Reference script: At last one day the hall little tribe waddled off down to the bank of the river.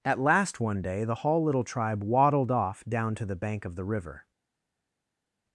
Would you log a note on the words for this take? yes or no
no